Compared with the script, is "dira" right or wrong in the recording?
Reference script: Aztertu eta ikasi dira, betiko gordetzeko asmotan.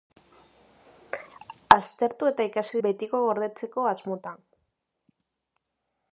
wrong